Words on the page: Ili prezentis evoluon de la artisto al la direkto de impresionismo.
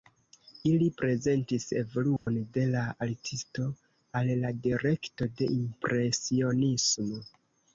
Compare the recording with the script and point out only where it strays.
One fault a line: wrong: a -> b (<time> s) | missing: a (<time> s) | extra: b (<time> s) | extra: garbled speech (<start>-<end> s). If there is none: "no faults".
no faults